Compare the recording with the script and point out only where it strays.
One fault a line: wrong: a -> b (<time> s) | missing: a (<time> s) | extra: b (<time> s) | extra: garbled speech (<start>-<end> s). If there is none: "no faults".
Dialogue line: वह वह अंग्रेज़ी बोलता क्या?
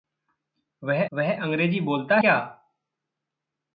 no faults